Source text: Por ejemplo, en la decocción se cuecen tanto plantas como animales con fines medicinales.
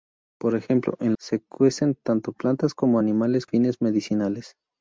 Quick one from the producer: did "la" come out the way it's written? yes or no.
no